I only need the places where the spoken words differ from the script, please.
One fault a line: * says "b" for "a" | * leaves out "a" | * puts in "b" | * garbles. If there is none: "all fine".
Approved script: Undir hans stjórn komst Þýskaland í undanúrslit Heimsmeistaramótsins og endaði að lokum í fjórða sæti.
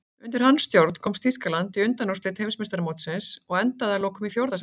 all fine